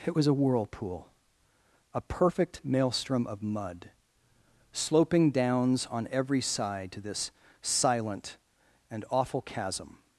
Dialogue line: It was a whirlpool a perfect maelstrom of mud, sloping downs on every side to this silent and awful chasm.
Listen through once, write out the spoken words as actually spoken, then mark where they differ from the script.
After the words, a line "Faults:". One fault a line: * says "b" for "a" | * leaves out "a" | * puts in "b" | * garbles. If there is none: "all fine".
It was a whirlpool a perfect maelstrom of mud, sloping downs on every side to this silent and awful chasm.
Faults:
all fine